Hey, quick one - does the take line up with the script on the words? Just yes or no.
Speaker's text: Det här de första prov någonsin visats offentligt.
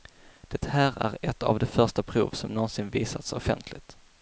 no